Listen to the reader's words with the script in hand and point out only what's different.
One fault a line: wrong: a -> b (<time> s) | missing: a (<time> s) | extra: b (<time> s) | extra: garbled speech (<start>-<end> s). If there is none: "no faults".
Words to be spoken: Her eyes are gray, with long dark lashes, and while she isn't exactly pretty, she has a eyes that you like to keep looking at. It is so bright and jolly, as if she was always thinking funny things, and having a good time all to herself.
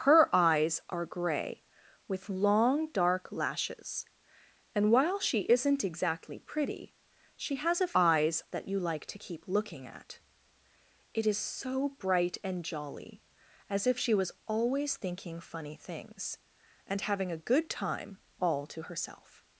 no faults